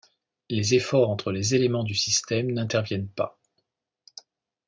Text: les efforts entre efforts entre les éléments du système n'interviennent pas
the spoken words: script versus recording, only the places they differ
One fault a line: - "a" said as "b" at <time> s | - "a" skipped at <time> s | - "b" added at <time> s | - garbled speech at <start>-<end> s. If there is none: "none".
- "efforts entre" skipped at 1.3 s